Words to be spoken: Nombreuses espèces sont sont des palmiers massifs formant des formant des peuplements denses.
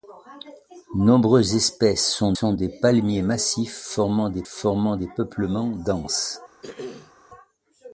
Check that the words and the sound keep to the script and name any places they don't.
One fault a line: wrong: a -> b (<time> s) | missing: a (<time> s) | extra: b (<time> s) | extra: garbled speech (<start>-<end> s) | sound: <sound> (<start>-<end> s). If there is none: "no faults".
sound: throat clearing (6.6-7.1 s)